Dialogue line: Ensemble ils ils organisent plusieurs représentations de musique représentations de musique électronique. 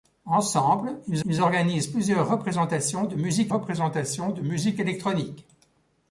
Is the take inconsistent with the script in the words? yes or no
no